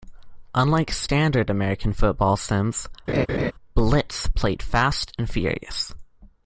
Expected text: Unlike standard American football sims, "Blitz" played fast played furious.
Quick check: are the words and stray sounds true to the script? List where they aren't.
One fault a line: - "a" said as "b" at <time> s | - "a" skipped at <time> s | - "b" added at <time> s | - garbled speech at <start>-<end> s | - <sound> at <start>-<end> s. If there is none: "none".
- laugh at 3.1-3.5 s
- "played" said as "and" at 5.2 s